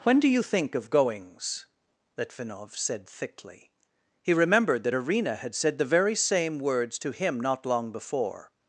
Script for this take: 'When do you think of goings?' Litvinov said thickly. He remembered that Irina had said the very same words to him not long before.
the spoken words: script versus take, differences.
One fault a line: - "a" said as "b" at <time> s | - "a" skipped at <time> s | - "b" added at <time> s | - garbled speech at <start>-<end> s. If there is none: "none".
none